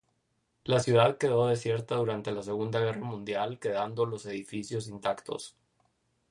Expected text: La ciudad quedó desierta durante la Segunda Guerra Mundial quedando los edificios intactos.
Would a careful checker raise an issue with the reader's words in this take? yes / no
no